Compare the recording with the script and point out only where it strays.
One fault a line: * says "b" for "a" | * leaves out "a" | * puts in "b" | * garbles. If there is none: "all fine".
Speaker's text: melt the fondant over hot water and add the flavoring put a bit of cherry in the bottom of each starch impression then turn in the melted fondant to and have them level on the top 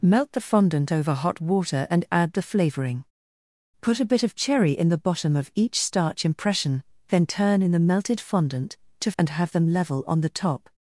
all fine